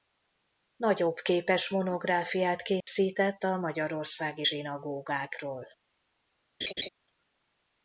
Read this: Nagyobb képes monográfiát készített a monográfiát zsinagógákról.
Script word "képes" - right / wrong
right